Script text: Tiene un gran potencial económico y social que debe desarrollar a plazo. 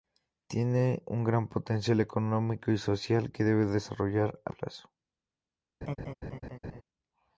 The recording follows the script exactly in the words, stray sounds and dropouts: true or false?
false